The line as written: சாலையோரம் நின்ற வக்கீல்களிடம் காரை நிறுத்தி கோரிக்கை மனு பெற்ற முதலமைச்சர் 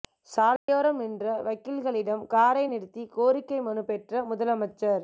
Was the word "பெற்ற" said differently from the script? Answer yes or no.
no